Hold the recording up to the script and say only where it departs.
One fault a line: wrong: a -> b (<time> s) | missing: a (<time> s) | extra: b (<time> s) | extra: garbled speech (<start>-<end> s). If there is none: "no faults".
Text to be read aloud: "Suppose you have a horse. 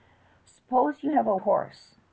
no faults